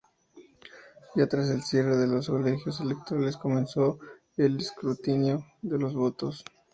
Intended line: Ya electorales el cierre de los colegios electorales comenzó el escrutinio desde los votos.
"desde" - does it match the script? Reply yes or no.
no